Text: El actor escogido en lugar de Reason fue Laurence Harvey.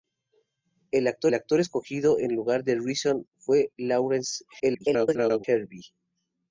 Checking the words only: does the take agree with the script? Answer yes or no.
no